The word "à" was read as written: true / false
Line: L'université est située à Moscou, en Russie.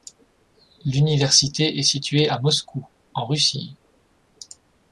true